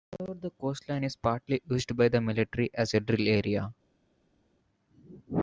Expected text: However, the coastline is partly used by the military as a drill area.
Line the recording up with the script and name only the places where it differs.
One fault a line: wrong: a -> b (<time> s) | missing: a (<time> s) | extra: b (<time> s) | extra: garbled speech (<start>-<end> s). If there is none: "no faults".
no faults